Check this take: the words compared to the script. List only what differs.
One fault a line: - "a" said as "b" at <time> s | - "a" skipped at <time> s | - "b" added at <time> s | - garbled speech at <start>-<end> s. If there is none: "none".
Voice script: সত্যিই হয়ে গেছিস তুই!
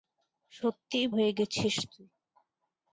none